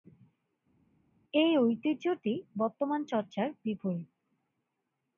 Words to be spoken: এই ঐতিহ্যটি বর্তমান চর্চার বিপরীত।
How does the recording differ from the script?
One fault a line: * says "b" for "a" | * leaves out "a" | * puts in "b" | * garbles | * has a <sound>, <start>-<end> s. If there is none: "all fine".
all fine